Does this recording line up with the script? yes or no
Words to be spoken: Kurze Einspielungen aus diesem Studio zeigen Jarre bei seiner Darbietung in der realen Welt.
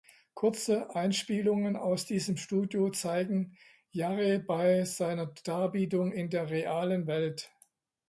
yes